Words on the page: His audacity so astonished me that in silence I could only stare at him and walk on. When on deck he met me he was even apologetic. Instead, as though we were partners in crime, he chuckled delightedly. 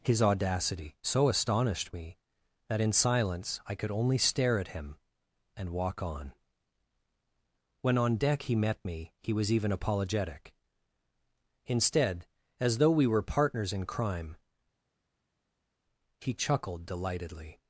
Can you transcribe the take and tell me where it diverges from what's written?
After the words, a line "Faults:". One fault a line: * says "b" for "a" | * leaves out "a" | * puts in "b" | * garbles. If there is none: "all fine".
His audacity so astonished me that in silence I could only stare at him and walk on. When on deck he met me he was even apologetic. Instead, as though we were partners in crime, he chuckled delightedly.
Faults:
all fine